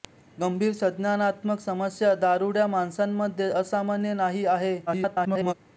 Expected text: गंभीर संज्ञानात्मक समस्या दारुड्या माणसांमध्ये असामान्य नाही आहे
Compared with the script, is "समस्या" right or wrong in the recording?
right